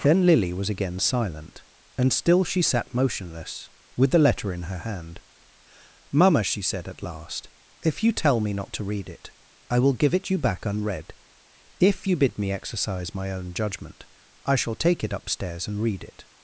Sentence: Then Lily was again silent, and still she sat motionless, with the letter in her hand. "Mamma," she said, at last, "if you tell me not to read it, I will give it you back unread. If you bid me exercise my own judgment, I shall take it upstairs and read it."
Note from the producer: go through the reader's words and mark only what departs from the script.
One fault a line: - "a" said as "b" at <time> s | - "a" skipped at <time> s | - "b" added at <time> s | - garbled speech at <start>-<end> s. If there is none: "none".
none